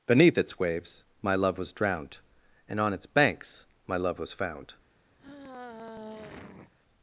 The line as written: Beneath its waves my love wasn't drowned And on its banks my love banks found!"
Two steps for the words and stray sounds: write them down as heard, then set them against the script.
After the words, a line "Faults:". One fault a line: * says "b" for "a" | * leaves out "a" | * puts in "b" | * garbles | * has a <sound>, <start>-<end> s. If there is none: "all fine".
Beneath its waves my love was drowned And on its banks my love was found!"
Faults:
* says "was" for "wasn't"
* says "was" for "banks"
* has a sigh, 5.2-6.7 s